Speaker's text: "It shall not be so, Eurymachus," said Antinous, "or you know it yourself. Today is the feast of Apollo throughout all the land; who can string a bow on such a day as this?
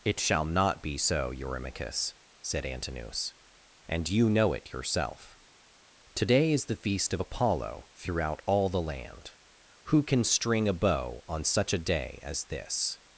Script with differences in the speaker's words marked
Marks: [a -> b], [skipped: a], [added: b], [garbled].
"It shall not be so, Eurymachus," said Antinous, ["or -> and] you know it yourself. Today is the feast of Apollo throughout all the land; who can string a bow on such a day as this?